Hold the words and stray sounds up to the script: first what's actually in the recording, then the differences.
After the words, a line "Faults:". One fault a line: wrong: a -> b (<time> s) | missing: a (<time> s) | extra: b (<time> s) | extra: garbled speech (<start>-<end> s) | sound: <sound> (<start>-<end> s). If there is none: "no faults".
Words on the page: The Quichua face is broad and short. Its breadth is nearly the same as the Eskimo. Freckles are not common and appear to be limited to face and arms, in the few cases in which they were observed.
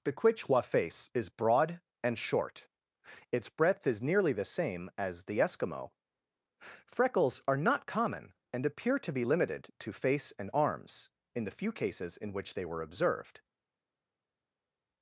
The Quichua face is broad and short. Its breadth is nearly the same as the Eskimo. Freckles are not common and appear to be limited to face and arms, in the few cases in which they were observed.
Faults:
no faults